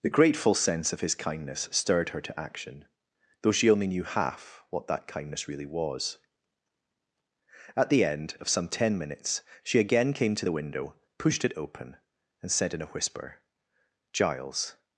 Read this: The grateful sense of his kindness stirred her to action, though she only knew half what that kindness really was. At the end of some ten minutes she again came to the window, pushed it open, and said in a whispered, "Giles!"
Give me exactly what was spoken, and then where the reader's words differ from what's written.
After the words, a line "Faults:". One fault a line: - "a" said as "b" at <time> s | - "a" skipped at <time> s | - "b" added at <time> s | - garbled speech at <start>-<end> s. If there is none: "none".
The grateful sense of his kindness stirred her to action, though she only knew half what that kindness really was. At the end of some ten minutes she again came to the window, pushed it open, and said in a whisper, "Giles!"
Faults:
- "whispered" said as "whisper" at 12.9 s